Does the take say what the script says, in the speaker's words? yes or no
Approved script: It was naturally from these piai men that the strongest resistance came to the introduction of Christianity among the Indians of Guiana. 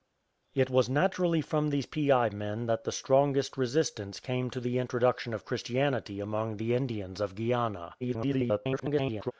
no